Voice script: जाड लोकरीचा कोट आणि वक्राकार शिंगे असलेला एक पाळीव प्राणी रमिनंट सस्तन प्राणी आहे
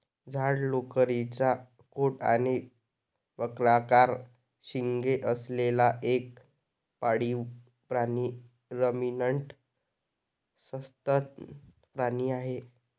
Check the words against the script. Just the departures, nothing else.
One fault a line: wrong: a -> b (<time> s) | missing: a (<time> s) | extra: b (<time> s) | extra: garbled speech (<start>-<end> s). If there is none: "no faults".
no faults